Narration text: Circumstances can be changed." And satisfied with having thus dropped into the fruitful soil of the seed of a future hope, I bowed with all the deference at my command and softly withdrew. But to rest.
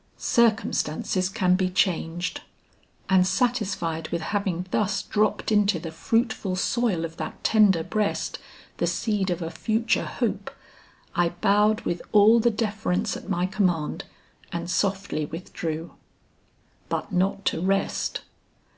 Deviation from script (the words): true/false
true